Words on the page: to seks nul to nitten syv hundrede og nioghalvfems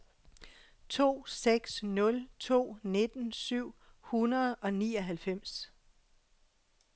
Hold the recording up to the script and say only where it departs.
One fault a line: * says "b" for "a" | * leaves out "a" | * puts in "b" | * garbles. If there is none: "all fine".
all fine